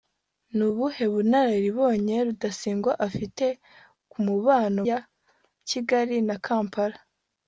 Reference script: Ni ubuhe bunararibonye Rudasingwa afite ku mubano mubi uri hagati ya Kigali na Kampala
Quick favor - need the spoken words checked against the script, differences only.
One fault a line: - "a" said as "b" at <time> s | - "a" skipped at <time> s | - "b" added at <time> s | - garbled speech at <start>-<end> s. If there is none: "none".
- "mubi uri hagati" skipped at 4.8 s